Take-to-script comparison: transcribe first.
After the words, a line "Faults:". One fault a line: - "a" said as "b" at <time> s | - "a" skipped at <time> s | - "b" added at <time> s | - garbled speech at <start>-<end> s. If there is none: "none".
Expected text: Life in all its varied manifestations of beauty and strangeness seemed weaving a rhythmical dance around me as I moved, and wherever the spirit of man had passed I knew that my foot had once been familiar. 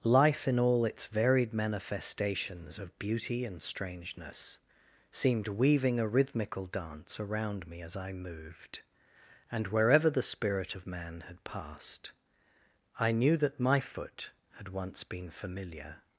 Life in all its varied manifestations of beauty and strangeness seemed weaving a rhythmical dance around me as I moved, and wherever the spirit of man had passed I knew that my foot had once been familiar.
Faults:
none